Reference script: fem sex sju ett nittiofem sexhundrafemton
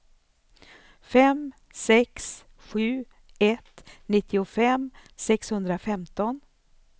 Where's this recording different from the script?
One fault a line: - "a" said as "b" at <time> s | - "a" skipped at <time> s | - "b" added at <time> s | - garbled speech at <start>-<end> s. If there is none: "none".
none